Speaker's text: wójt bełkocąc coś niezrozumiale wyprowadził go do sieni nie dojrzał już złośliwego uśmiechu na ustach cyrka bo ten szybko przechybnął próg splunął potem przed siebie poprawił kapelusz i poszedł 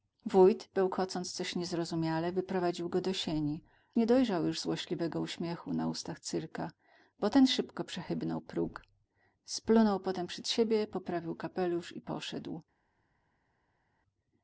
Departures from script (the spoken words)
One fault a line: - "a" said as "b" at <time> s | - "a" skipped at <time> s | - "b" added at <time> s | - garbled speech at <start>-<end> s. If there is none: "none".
none